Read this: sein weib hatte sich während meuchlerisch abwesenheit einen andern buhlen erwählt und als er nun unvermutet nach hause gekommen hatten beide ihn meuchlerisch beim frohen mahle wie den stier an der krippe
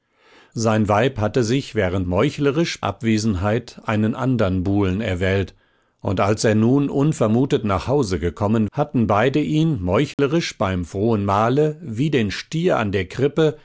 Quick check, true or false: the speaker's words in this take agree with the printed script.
true